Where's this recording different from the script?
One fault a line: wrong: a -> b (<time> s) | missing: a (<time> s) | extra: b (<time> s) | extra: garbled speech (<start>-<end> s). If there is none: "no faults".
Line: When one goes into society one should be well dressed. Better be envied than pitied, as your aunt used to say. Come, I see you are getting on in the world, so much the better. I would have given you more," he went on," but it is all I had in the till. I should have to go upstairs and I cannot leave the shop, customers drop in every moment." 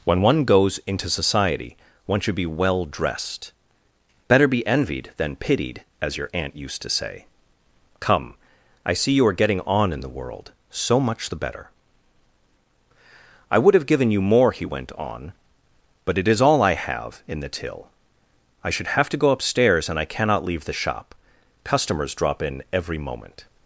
wrong: had -> have (16.7 s)